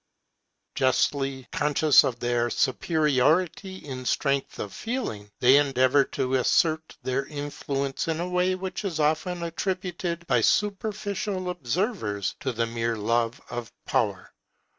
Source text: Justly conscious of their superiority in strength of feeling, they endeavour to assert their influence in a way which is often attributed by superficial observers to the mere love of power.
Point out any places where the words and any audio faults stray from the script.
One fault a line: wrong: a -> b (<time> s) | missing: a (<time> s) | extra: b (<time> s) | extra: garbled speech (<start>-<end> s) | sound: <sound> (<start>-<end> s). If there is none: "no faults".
no faults